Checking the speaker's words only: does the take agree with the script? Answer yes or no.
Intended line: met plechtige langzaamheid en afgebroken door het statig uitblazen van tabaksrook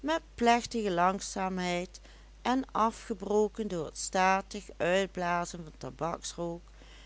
yes